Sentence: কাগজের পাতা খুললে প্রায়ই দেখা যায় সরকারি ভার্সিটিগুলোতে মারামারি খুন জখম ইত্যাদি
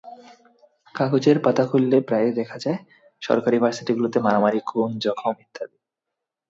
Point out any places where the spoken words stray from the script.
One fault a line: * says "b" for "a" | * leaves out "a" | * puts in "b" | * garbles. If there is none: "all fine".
all fine